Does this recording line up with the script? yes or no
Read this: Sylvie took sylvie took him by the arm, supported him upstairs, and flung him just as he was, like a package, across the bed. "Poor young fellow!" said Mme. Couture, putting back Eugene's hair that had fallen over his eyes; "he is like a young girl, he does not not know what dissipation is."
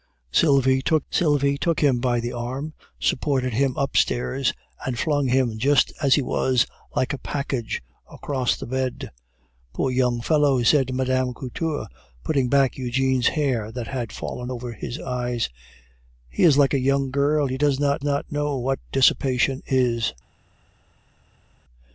yes